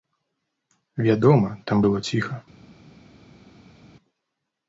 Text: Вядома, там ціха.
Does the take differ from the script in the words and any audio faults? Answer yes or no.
yes